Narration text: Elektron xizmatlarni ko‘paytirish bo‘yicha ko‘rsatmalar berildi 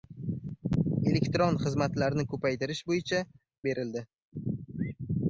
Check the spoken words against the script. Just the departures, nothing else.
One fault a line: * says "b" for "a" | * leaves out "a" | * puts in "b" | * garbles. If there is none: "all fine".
* leaves out "ko‘rsatmalar"